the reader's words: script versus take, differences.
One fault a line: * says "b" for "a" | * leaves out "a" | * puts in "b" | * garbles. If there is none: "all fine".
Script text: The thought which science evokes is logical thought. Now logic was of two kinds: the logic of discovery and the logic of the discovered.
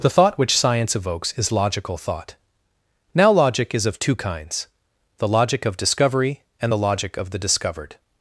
* says "is" for "was"